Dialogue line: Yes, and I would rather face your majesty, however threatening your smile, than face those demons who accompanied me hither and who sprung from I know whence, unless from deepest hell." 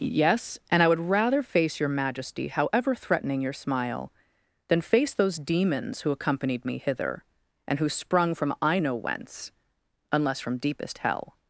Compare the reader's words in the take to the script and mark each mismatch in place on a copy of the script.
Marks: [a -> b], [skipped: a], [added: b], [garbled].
Yes, and I would rather face your majesty, however threatening your smile, than face those demons who accompanied me hither and who sprung from I know whence, unless from deepest hell."